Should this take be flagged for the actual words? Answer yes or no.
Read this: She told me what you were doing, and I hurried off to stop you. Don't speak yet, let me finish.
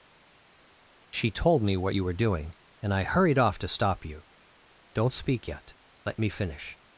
no